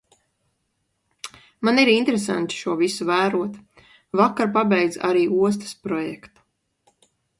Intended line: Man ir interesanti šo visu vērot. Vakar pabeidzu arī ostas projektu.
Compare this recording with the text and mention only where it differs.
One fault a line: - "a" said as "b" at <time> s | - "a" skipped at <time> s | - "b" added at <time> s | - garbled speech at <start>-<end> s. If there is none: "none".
none